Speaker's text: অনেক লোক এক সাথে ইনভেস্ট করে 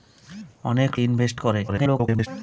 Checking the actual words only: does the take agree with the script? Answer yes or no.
no